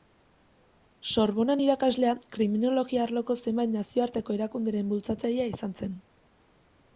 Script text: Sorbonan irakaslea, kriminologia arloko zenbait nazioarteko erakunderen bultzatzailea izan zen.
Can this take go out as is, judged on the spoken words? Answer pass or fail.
pass